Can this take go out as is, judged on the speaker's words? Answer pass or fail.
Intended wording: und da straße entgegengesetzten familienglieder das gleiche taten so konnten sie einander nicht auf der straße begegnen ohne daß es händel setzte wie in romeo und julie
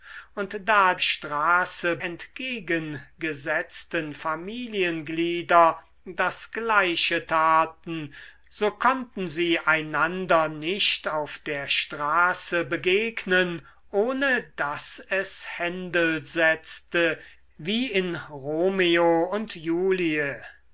pass